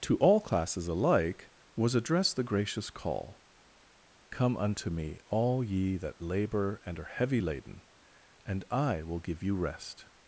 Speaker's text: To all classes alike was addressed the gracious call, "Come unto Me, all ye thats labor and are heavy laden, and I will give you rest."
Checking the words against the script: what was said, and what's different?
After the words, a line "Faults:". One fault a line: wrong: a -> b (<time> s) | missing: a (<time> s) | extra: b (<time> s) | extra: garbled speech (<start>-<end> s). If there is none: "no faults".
To all classes alike was addressed the gracious call, "Come unto Me, all ye that labor and are heavy laden, and I will give you rest."
Faults:
wrong: thats -> that (6.0 s)